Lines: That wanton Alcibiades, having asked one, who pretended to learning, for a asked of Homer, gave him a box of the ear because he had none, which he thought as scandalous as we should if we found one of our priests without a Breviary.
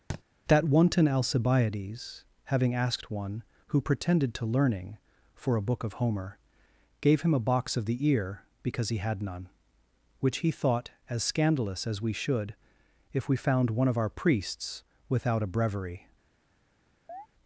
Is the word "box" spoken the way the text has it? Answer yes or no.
yes